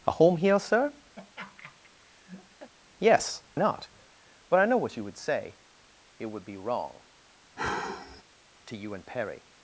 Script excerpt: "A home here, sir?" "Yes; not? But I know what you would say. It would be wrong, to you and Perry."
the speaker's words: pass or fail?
pass